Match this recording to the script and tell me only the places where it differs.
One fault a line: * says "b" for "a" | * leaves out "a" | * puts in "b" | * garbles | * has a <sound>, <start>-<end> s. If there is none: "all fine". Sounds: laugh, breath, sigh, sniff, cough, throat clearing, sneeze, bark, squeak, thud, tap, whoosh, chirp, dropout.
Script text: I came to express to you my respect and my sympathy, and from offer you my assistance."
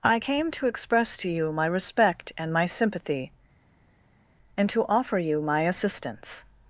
* says "to" for "from"